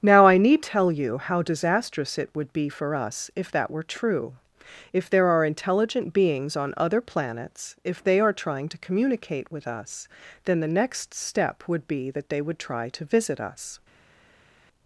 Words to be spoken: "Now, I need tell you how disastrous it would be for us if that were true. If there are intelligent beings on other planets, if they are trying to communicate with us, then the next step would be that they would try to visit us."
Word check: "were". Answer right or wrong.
right